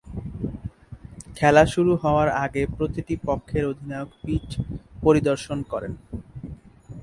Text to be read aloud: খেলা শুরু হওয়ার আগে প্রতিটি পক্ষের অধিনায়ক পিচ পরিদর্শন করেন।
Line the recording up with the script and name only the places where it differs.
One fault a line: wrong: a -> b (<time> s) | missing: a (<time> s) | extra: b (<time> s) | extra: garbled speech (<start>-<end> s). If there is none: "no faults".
no faults